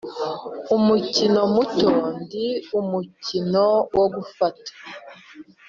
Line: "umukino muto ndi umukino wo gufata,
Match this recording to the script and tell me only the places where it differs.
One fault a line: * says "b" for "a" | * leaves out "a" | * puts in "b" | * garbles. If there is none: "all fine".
all fine